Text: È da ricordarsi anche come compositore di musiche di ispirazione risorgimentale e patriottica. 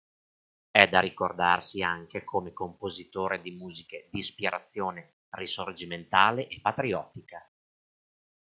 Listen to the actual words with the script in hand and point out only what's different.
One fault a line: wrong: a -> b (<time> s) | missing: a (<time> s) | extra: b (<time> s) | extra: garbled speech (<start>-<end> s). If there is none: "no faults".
no faults